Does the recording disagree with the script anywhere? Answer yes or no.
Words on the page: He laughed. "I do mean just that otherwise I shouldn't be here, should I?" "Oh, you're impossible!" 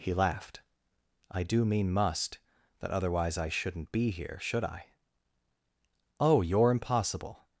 yes